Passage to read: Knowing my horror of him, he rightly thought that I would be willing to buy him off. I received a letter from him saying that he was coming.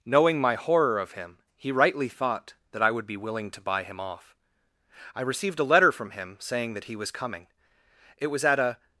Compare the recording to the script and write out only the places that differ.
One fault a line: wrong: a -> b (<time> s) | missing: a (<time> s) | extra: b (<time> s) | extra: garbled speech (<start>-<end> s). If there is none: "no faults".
extra: It was at a (8.2 s)